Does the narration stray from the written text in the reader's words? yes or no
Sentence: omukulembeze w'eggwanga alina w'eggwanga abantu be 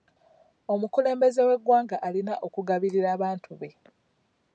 yes